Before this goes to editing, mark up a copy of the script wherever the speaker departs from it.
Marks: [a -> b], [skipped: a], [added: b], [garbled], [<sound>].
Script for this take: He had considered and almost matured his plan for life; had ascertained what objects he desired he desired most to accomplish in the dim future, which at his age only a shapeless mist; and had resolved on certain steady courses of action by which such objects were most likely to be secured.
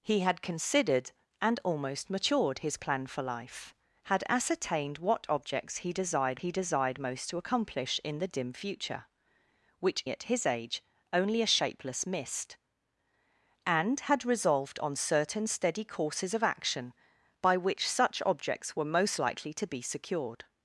He had considered and almost matured his plan for life; had ascertained what objects he desired he desired most to accomplish in the dim future, which at his age only a shapeless mist; and had resolved on certain steady courses of action by which such objects were most likely to be secured.